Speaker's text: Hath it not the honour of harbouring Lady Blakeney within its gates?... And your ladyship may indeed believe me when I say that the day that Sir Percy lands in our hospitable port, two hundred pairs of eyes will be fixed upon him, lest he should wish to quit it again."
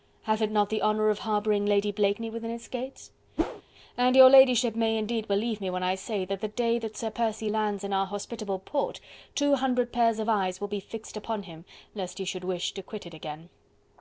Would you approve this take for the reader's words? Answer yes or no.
yes